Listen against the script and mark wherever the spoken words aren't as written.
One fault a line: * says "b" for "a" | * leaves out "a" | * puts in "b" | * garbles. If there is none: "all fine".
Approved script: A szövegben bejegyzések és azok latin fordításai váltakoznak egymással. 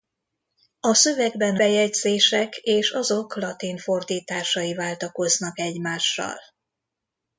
all fine